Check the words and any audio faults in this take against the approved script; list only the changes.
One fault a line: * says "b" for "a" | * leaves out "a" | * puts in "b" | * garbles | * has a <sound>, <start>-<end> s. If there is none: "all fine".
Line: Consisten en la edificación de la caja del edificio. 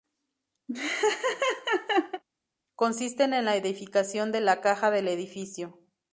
* has a laugh, 0.7-2.2 s